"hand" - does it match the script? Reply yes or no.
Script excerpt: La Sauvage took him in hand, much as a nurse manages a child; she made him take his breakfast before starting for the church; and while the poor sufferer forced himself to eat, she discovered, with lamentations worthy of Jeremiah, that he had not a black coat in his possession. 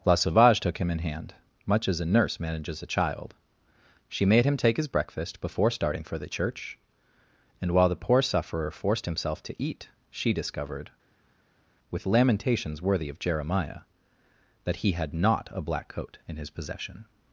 yes